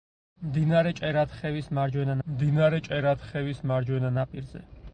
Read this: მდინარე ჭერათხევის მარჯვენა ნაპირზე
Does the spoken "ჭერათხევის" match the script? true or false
true